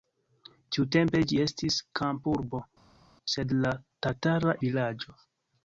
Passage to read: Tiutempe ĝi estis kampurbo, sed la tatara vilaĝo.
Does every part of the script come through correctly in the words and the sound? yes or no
yes